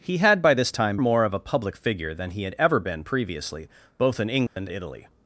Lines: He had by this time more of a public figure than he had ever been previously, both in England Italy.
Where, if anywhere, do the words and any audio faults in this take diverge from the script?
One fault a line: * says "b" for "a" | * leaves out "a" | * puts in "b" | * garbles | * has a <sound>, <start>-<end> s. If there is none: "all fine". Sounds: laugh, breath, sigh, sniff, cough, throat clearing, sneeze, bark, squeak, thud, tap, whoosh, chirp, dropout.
* has a dropout, 4.5-4.6 s